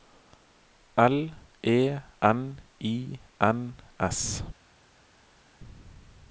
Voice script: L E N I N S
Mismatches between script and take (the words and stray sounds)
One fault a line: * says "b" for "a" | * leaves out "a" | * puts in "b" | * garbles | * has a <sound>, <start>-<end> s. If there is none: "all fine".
all fine